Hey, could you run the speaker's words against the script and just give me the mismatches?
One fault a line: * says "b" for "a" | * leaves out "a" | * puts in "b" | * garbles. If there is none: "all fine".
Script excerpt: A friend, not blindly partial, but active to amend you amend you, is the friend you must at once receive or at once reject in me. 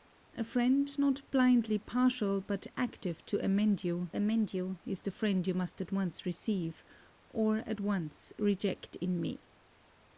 all fine